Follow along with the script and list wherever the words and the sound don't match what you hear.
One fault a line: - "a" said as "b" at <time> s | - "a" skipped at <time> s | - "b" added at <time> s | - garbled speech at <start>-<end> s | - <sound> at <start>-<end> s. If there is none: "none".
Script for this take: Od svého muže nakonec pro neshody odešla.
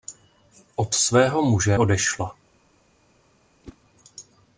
- "nakonec pro neshody" skipped at 1.8 s
- whoosh at 3.6-3.8 s